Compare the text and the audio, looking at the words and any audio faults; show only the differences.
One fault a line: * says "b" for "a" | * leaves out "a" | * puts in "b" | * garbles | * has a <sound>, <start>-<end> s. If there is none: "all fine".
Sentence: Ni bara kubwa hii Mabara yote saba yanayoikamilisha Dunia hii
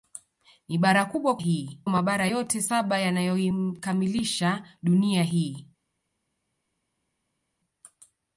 all fine